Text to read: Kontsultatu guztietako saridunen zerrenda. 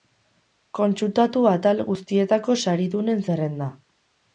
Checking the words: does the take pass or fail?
fail